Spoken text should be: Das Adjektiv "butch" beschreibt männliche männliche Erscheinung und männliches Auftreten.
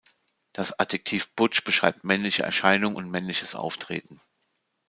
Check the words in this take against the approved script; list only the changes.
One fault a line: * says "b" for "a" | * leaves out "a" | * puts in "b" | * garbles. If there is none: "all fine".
* leaves out "männliche"